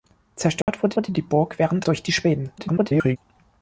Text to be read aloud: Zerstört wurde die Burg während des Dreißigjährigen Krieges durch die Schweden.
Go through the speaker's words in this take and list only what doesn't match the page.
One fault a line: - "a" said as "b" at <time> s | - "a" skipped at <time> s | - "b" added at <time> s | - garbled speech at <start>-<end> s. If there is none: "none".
- "wurde" added at 0.9 s
- "des Dreißigjährigen Krieges" skipped at 1.8 s
- garbled speech at 2.6-3.2 s